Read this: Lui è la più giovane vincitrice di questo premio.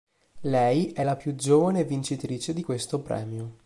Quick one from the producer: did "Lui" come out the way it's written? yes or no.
no